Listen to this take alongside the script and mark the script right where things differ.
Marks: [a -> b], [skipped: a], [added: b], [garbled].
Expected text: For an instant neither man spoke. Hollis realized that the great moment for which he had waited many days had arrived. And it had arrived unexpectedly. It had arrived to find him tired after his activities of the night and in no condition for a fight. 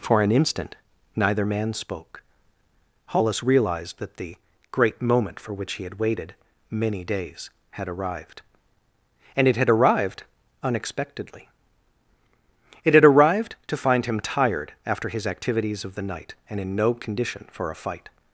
For an instant neither man spoke. Hollis realized that the great moment for which he had waited many days had arrived. And it had arrived unexpectedly. It had arrived to find him tired after his activities of the night and in no condition for a fight.